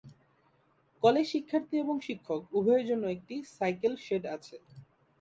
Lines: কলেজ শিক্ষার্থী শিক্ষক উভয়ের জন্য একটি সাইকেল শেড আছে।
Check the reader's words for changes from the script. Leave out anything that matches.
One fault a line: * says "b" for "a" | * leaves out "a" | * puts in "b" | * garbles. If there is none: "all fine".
* puts in "এবং"